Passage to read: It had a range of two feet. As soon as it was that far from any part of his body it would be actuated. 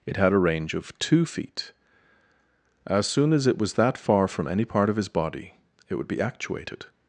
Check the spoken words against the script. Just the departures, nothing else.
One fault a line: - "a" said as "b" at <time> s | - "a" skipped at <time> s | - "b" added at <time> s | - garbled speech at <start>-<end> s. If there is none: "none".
none